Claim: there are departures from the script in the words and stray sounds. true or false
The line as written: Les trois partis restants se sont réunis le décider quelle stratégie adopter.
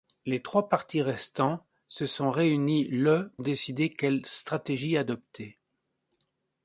false